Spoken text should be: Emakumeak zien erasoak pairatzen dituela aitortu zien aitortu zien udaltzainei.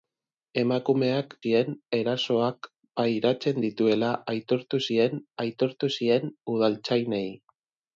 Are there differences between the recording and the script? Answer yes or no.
no